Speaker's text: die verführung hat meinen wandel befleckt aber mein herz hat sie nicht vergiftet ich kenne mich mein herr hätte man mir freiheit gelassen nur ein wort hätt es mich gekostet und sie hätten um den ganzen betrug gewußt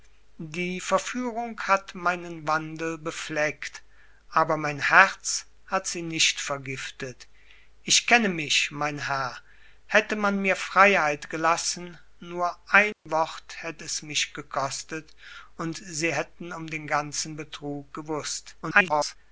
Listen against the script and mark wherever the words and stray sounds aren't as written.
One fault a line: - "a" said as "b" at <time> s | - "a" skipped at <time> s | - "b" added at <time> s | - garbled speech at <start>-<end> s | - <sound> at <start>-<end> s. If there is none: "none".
- dropout at 12.9-13.1 s
- garbled speech at 18.6-19.2 s